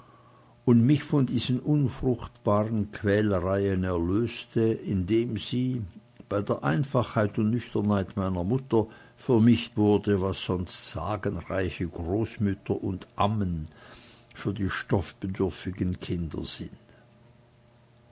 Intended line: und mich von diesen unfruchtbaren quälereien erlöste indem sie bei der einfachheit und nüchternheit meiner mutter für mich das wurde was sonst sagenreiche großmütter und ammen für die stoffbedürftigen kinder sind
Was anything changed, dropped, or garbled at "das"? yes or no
yes